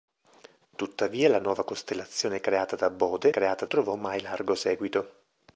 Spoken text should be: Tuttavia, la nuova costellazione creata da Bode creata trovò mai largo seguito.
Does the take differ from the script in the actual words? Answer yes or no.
no